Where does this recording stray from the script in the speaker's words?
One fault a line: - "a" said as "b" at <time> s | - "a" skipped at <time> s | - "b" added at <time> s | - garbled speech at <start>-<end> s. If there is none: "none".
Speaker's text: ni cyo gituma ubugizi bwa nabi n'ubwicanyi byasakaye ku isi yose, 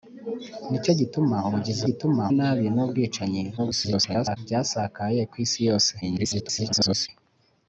- "bwa" said as "gituma" at 1.9 s
- garbled speech at 3.6-4.4 s
- garbled speech at 6.0-7.1 s